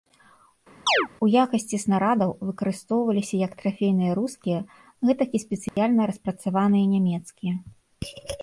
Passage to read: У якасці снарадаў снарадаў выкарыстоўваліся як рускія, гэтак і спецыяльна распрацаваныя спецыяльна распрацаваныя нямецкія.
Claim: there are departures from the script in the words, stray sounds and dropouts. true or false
true